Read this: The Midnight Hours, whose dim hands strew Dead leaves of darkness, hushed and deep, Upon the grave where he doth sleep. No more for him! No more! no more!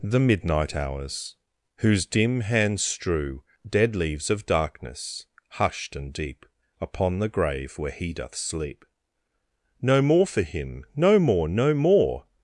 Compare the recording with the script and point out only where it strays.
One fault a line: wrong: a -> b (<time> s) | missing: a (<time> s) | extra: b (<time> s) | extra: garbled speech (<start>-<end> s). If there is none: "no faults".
no faults